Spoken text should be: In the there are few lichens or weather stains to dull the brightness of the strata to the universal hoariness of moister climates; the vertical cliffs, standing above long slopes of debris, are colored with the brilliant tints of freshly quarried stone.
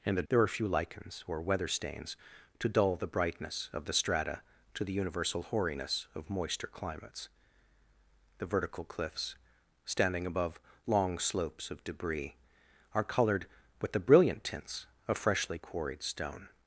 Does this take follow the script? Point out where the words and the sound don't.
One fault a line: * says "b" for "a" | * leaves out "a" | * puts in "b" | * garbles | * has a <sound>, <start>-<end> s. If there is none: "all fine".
all fine